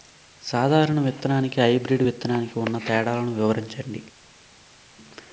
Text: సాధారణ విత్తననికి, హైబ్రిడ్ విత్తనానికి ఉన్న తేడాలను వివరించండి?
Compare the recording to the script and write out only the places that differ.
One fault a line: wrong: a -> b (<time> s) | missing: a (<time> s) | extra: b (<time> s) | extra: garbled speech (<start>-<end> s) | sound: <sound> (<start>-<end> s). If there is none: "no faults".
no faults